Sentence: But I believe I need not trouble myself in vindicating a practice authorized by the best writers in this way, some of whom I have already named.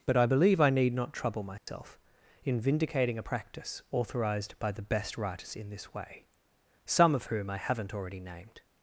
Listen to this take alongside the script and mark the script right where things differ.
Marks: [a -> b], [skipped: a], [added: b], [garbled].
But I believe I need not trouble myself in vindicating a practice authorized by the best writers in this way, some of whom I [have -> haven't] already named.